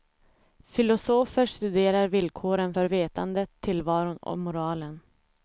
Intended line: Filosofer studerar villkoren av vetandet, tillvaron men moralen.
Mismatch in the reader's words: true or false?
true